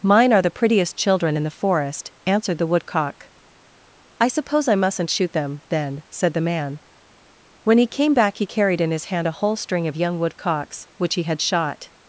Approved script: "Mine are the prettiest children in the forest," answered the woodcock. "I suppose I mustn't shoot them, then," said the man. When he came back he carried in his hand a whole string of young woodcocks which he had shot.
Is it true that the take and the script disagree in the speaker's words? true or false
false